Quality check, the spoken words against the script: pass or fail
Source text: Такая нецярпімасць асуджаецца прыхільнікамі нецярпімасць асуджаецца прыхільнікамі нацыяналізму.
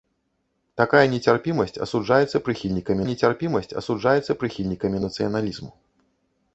pass